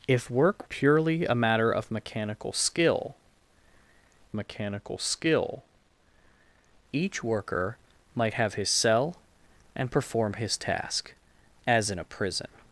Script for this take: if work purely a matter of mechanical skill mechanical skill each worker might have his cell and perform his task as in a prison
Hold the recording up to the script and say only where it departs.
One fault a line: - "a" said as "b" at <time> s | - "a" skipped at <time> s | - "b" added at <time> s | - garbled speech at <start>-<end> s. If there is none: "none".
none